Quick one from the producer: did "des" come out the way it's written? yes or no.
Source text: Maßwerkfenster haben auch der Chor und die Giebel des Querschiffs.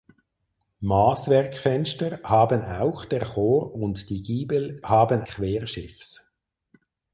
no